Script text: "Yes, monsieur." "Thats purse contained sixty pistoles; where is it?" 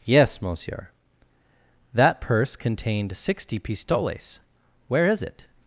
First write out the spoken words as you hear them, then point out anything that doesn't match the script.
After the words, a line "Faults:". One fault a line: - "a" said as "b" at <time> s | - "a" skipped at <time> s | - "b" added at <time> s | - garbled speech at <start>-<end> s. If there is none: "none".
"Yes, monsieur." "That purse contained sixty pistoles; where is it?"
Faults:
- "Thats" said as "That" at 1.9 s